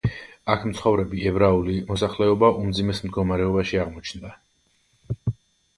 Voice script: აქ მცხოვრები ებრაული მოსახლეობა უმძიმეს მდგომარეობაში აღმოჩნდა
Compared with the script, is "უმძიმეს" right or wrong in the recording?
right